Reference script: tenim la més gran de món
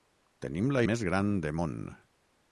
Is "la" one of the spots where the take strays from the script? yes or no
no